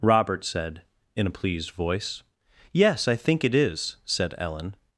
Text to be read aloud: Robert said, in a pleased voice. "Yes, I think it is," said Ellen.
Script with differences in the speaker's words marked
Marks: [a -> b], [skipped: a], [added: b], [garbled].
Robert said, in a pleased voice. "Yes, I think it is," said Ellen.